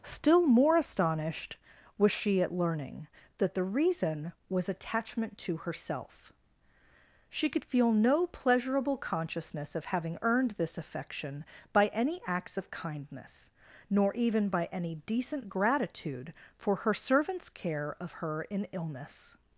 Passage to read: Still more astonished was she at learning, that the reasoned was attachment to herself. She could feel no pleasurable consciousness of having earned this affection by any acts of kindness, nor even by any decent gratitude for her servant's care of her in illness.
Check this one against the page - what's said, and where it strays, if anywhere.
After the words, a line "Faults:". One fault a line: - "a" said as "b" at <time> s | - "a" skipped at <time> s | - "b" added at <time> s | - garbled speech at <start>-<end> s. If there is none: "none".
Still more astonished was she at learning, that the reason was attachment to herself. She could feel no pleasurable consciousness of having earned this affection by any acts of kindness, nor even by any decent gratitude for her servant's care of her in illness.
Faults:
- "reasoned" said as "reason" at 3.6 s